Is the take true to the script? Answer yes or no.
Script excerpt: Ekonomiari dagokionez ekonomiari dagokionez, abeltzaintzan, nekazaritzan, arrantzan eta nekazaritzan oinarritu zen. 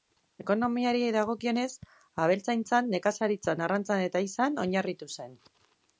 no